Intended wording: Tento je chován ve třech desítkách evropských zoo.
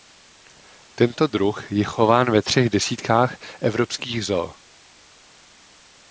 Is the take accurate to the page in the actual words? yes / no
no